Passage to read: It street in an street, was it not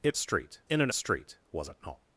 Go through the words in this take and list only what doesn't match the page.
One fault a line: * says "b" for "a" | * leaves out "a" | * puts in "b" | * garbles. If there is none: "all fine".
all fine